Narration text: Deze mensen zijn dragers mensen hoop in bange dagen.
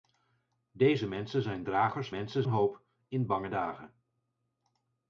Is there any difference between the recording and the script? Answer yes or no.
no